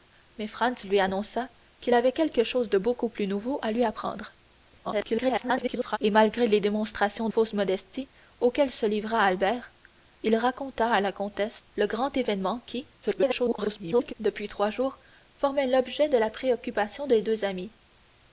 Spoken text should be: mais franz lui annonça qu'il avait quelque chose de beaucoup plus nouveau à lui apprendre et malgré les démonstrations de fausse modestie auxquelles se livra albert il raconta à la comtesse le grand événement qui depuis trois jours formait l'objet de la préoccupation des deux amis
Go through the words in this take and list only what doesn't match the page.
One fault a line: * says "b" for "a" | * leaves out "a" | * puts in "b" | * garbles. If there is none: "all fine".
* garbles
* leaves out "de"
* garbles